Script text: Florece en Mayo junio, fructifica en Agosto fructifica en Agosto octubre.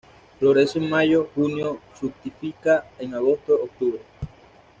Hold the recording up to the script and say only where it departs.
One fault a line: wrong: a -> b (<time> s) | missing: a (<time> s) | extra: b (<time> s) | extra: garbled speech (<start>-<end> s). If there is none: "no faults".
missing: fructifica en Agosto (3.5 s)